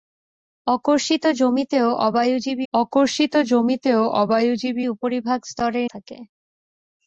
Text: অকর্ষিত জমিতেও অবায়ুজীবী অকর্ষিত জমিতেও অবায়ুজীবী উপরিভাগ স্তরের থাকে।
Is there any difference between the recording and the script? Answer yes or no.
no